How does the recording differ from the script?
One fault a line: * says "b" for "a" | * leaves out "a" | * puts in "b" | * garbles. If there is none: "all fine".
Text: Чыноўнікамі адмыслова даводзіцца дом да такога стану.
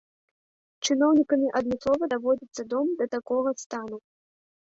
all fine